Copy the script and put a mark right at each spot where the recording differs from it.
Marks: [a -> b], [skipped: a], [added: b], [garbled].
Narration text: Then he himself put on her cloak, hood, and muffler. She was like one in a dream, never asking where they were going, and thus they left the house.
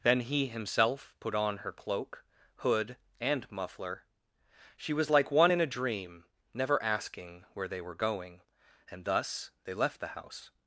Then he himself put on her cloak, hood, and muffler. She was like one in a dream, never asking where they were going, and thus they left the house.